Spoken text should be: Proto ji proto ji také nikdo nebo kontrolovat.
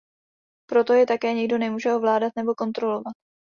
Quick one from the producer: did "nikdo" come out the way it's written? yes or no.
no